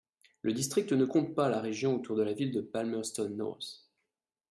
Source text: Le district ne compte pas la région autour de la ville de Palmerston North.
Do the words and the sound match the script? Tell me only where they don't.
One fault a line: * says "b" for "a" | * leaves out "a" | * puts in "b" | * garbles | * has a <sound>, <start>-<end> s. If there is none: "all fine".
all fine